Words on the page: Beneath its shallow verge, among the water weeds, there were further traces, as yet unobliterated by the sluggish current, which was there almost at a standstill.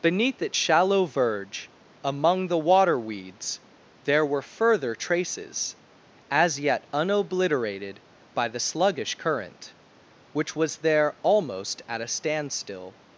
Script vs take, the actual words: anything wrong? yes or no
no